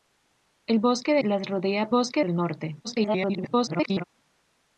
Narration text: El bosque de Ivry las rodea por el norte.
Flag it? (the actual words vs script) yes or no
yes